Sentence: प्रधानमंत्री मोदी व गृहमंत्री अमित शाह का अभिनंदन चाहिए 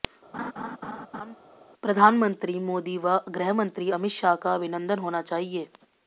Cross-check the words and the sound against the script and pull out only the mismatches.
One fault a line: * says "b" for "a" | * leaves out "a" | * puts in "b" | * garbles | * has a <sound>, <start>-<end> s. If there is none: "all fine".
* has a laugh, 0.3-1.4 s
* puts in "होना"